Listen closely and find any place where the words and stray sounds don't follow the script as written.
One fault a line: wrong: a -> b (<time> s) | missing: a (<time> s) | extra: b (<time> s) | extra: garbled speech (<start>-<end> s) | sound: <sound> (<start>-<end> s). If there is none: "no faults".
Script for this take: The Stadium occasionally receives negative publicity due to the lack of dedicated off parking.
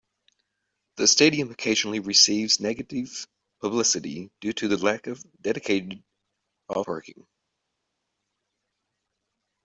no faults